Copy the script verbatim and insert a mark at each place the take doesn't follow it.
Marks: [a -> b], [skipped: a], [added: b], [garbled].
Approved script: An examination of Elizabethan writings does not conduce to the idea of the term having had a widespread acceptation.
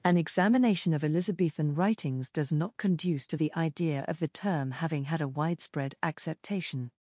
An examination of Elizabethan writings does not conduce to the idea of the term having had a widespread acceptation.